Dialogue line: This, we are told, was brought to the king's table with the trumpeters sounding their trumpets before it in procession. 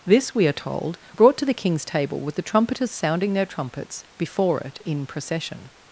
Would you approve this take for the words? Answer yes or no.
no